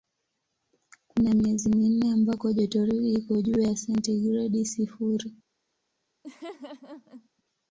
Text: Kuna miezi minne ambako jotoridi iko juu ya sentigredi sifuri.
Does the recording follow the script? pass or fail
pass